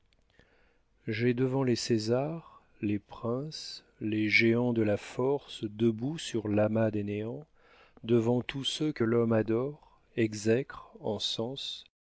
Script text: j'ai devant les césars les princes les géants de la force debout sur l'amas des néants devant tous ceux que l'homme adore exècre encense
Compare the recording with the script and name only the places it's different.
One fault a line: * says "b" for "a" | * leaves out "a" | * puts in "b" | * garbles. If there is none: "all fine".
all fine